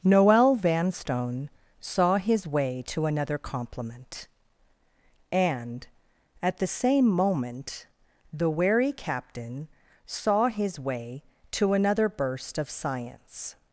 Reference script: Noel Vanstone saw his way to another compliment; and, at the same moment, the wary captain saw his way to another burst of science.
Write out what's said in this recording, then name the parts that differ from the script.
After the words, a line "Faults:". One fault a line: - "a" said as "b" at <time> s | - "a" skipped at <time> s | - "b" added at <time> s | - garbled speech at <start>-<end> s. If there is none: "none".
Noel Vanstone saw his way to another compliment; and, at the same moment, the wary captain saw his way to another burst of science.
Faults:
none